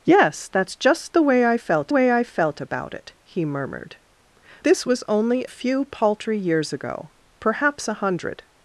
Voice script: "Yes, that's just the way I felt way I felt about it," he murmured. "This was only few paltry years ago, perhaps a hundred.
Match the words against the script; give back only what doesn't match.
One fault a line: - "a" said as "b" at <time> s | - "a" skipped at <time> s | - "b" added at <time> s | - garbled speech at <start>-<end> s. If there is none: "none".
none